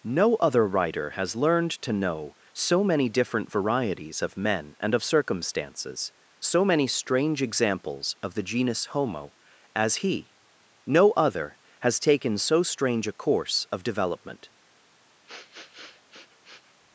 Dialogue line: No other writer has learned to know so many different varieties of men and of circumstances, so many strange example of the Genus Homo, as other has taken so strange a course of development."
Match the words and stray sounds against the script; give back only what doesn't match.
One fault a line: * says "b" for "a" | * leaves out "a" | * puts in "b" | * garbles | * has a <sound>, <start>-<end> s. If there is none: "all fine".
* says "examples" for "example"
* puts in "he no"
* has a sniff, 15.3-16.8 s